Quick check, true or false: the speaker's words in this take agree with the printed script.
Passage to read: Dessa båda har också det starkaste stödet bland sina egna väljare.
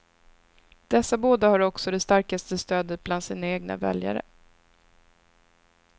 true